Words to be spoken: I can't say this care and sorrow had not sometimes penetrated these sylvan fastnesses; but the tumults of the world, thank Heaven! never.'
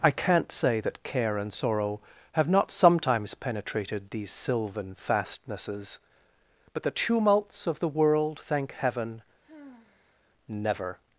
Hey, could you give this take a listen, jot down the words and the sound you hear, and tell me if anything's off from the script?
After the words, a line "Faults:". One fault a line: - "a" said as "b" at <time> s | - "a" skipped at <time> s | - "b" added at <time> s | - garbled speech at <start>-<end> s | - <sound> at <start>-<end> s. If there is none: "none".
I can't say that care and sorrow have not sometimes penetrated these sylvan fastnesses; but the tumults of the world, thank Heaven! never.'
Faults:
- "this" said as "that" at 0.8 s
- "had" said as "have" at 2.3 s
- sigh at 9.4-10.2 s